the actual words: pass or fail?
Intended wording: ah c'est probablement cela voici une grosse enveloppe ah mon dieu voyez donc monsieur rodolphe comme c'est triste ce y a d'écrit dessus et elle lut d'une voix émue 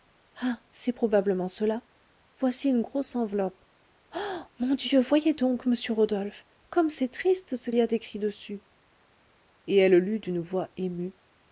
pass